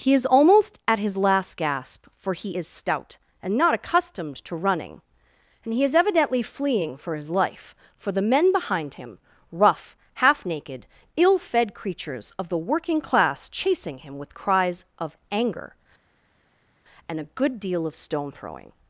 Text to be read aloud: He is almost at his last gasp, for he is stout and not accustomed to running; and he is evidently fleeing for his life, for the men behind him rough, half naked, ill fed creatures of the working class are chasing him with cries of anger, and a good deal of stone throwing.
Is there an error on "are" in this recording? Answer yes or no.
yes